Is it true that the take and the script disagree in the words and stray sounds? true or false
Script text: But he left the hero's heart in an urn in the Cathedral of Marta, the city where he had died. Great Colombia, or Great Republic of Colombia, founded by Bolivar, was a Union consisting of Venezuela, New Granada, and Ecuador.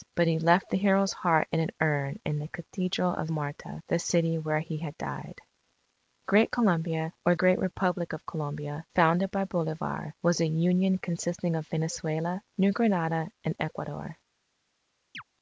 true